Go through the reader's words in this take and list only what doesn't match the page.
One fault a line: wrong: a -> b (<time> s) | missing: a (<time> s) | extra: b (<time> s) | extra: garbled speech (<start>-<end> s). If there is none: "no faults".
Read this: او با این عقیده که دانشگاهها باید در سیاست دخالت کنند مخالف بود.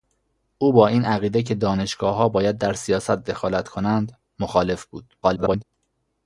extra: garbled speech (5.2-5.6 s)